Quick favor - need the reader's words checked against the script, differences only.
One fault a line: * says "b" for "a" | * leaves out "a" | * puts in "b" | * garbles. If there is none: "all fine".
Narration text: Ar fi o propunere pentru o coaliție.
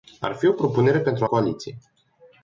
all fine